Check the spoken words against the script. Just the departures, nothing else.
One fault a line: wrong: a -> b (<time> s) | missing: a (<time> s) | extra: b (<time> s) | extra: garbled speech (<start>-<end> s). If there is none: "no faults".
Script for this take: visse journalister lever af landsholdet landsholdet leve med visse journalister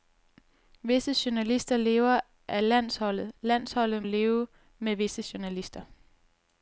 no faults